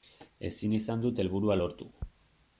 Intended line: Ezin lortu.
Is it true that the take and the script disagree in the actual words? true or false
true